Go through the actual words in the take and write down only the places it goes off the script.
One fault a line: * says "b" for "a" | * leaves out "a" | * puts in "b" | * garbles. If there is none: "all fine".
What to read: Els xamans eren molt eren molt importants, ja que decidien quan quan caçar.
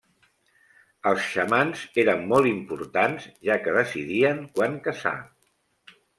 * leaves out "eren molt"
* leaves out "quan"